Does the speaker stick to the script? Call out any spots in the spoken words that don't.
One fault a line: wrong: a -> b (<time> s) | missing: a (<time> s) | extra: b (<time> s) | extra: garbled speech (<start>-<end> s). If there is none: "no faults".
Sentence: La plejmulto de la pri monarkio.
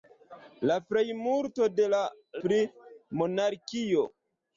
no faults